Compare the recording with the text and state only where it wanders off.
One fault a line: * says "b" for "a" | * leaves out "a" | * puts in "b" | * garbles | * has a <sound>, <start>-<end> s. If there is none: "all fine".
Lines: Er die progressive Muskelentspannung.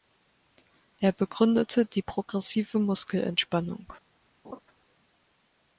* puts in "begründete"
* has a laugh, 4.4-4.6 s